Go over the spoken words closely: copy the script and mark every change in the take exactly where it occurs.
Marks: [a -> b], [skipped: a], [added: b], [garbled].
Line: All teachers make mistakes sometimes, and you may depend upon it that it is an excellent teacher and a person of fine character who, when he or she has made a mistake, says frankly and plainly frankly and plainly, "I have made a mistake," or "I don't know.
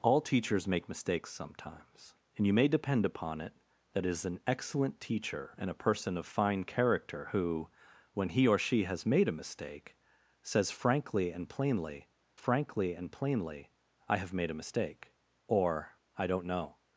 All teachers make mistakes sometimes, and you may depend upon it that it is an excellent teacher and a person of fine character who, when he or she has made a mistake, says frankly and plainly frankly and plainly, "I have made a mistake," or "I don't know.